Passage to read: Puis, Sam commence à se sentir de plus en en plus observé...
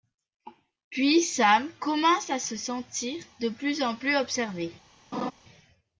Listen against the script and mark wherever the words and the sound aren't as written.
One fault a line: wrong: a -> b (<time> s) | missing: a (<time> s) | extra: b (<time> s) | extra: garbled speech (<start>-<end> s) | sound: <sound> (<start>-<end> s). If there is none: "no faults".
missing: en (4.0 s)
sound: laugh (5.1-5.3 s)